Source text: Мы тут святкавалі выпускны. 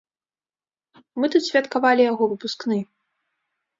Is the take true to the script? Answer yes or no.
no